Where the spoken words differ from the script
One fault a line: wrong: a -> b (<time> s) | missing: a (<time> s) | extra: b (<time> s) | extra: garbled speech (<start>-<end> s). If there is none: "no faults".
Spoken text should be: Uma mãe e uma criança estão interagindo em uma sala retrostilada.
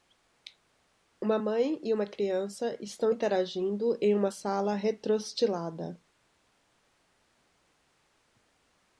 no faults